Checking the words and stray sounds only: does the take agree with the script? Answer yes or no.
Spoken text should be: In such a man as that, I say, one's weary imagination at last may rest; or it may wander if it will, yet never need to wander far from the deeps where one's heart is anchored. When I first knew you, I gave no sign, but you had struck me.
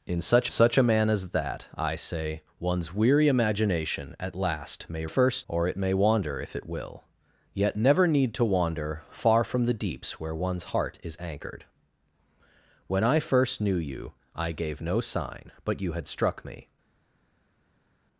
no